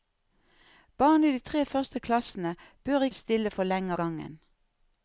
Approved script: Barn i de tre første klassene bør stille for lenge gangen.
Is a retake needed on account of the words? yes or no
no